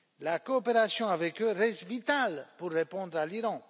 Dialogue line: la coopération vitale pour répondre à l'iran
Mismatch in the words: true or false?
true